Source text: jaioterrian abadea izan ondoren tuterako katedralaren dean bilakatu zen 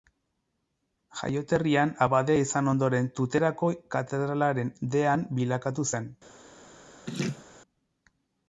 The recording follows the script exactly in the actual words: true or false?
true